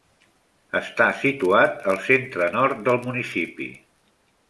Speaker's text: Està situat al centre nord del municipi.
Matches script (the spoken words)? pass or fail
pass